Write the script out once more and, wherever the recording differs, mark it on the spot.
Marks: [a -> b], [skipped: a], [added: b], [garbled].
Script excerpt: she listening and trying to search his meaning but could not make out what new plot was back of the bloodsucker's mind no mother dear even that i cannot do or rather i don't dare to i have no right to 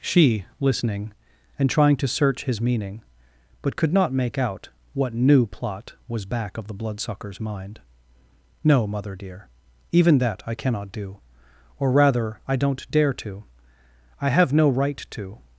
she listening and trying to search his meaning but could not make out what new plot was back of the bloodsucker's mind no mother dear even that i cannot do or rather i don't dare to i have no right to